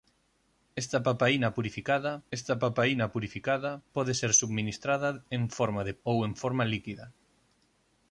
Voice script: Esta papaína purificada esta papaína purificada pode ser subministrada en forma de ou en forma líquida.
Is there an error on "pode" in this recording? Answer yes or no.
no